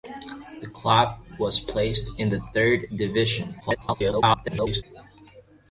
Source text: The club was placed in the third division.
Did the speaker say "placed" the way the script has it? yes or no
yes